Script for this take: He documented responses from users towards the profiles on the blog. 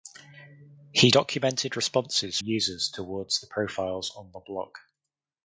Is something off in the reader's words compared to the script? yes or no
yes